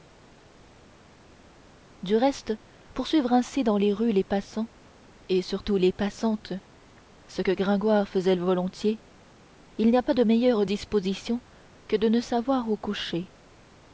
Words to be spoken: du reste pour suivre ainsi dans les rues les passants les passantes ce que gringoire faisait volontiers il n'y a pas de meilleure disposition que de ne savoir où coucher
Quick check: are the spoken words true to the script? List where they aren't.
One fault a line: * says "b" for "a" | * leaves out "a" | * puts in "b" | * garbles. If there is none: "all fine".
* puts in "et surtout"